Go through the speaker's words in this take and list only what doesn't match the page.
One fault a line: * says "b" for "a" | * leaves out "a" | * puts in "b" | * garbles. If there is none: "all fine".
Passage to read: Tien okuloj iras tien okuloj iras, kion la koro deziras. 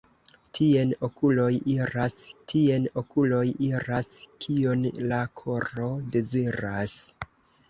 all fine